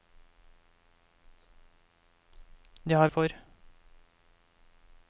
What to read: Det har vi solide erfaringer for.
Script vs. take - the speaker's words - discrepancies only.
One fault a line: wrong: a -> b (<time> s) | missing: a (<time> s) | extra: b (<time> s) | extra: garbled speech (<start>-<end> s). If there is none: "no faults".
missing: vi solide erfaringer (3.1 s)